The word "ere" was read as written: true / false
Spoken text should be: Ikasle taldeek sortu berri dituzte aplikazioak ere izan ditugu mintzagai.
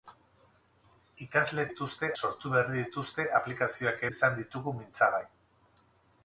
false